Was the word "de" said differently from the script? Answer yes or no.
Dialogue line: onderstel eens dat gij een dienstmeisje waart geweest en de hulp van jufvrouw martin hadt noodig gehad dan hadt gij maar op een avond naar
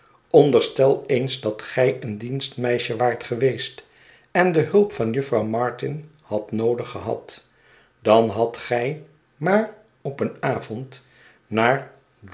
no